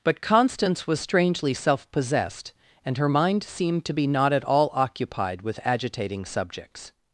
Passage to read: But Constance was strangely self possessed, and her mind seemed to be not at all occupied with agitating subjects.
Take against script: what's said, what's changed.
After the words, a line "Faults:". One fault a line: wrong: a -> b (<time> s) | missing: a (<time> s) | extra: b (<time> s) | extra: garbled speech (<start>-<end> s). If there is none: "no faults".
But Constance was strangely self possessed, and her mind seemed to be not at all occupied with agitating subjects.
Faults:
no faults